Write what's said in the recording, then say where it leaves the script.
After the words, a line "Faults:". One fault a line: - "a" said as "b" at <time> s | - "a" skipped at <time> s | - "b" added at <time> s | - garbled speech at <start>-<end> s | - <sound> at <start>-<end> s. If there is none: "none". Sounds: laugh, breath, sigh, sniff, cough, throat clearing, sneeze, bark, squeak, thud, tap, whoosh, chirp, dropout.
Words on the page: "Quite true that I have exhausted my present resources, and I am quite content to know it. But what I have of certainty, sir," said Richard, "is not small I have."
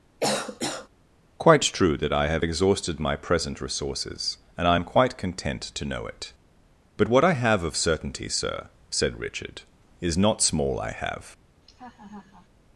"Quite true that I have exhausted my present resources, and I am quite content to know it. But what I have of certainty, sir," said Richard, "is not small I have."
Faults:
- cough at 0.2-0.9 s
- laugh at 11.6-12.5 s